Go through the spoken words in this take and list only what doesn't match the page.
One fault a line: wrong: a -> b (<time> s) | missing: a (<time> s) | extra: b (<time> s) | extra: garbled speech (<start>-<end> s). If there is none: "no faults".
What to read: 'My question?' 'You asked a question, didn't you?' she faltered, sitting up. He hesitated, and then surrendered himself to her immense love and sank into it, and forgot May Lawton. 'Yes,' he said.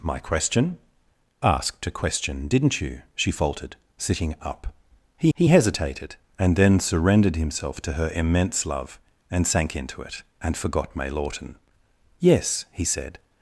missing: You (0.8 s)
extra: he (5.3 s)